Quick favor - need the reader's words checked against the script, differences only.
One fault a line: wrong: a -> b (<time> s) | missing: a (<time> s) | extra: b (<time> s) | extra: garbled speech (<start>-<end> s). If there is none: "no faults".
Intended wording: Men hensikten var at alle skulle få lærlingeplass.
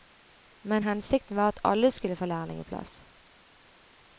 no faults